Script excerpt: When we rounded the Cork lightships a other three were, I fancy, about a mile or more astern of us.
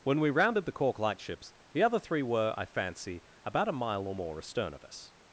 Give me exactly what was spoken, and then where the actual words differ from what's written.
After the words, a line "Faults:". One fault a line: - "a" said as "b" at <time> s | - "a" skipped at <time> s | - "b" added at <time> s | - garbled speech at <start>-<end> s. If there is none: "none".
When we rounded the Cork lightships the other three were, I fancy, about a mile or more astern of us.
Faults:
- "a" said as "the" at 1.7 s